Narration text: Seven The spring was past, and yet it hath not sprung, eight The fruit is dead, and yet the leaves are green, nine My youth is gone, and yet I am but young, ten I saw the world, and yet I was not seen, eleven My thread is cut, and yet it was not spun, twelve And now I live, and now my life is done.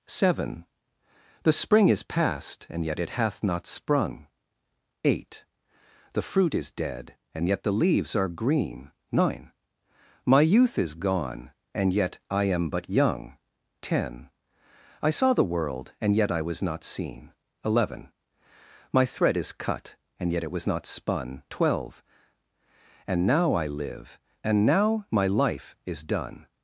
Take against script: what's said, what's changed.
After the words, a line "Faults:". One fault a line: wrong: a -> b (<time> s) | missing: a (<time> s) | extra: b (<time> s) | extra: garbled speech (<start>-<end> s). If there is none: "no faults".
Seven The spring is past, and yet it hath not sprung, eight The fruit is dead, and yet the leaves are green, nine My youth is gone, and yet I am but young, ten I saw the world, and yet I was not seen, eleven My thread is cut, and yet it was not spun, twelve And now I live, and now my life is done.
Faults:
wrong: was -> is (1.9 s)